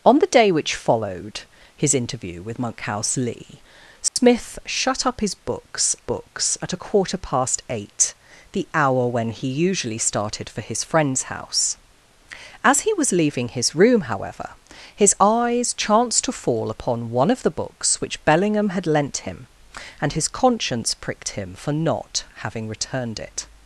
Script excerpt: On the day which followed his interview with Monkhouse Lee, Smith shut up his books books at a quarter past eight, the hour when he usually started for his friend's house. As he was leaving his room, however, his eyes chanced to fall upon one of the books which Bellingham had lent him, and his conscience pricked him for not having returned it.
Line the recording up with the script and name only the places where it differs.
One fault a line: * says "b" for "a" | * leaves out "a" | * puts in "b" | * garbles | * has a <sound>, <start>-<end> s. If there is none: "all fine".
* has a dropout, 4.1-4.2 s